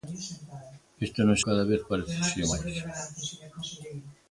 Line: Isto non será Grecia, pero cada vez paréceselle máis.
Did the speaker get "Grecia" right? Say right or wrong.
wrong